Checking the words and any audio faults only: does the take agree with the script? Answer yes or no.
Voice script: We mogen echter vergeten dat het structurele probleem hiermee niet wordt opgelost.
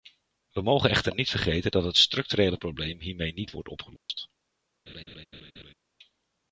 no